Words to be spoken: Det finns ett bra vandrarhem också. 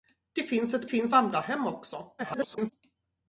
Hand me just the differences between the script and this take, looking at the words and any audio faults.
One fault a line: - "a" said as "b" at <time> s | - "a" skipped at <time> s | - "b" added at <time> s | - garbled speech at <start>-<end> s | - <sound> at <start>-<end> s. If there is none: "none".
- "bra" said as "finns" at 0.8 s
- garbled speech at 2.2-2.7 s